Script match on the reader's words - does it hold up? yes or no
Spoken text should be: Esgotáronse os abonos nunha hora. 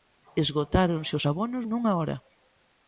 yes